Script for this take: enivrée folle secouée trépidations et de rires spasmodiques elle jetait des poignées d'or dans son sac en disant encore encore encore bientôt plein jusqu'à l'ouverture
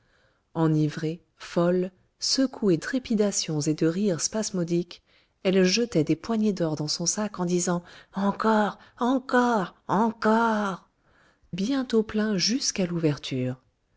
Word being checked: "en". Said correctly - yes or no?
yes